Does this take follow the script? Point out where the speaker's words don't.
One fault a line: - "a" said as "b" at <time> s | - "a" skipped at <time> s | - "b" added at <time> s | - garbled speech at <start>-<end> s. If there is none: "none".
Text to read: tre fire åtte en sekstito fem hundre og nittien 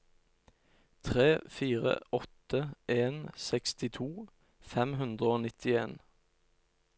none